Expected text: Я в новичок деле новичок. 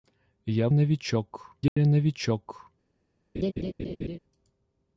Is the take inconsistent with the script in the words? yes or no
no